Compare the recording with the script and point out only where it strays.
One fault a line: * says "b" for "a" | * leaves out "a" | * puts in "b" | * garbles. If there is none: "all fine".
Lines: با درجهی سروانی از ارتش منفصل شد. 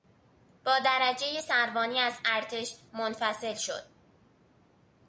all fine